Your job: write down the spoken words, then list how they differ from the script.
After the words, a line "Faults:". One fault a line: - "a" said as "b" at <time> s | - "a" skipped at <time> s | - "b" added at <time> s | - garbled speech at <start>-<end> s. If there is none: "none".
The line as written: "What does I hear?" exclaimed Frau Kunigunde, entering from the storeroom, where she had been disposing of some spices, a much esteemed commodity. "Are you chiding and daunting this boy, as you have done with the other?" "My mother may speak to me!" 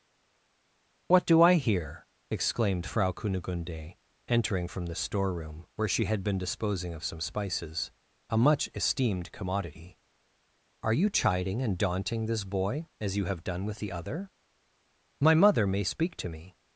"What do I hear?" exclaimed Frau Kunigunde, entering from the storeroom, where she had been disposing of some spices, a much esteemed commodity. "Are you chiding and daunting this boy, as you have done with the other?" "My mother may speak to me!"
Faults:
- "does" said as "do" at 1.3 s